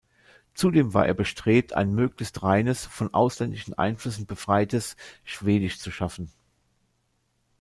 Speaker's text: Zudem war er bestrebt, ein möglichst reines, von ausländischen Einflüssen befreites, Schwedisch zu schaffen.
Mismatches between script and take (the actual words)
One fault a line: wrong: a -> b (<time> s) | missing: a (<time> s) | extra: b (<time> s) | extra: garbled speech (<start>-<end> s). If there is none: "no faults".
no faults